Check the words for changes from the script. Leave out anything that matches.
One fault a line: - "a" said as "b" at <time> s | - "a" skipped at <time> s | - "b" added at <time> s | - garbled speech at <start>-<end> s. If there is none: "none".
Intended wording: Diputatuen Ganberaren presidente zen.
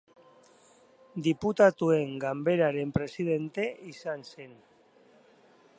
- "izan" added at 4.0 s